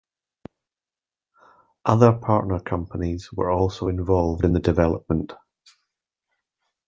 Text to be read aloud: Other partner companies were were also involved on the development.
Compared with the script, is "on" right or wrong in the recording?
wrong